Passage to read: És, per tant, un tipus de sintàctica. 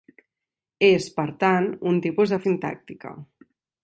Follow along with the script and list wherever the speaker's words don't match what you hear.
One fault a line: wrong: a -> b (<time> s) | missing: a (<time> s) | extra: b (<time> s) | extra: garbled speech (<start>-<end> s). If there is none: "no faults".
no faults